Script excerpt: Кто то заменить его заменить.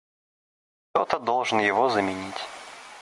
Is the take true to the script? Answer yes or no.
no